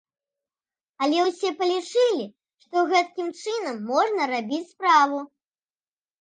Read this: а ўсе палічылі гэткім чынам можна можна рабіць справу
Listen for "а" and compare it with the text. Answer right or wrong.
wrong